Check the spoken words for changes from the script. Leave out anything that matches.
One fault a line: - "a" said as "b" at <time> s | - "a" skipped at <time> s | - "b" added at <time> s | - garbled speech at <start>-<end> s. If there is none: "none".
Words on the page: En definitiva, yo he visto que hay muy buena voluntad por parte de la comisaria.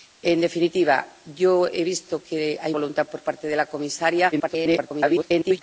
- "muy buena" skipped at 2.8 s
- garbled speech at 4.3-5.6 s